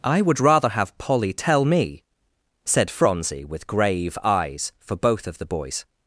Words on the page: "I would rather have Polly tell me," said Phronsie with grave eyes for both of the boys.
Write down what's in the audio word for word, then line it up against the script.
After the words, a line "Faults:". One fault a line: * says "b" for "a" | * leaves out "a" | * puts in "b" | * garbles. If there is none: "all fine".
"I would rather have Polly tell me," said Phronsie with grave eyes for both of the boys.
Faults:
all fine